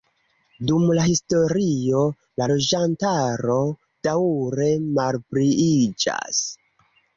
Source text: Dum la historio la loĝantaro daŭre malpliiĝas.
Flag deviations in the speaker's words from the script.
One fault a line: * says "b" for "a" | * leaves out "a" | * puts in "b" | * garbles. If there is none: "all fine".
all fine